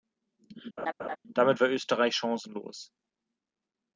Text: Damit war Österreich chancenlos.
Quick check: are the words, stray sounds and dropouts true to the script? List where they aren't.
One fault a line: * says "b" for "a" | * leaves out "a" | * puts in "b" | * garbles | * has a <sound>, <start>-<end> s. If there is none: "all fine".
* has a laugh, 0.8-1.2 s